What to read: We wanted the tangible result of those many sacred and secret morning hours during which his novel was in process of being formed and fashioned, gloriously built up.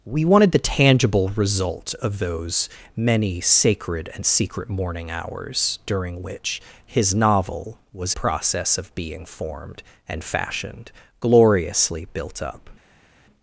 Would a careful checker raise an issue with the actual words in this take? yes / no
yes